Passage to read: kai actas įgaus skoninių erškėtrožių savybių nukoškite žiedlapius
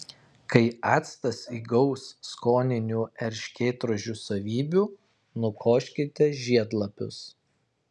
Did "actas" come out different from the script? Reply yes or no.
no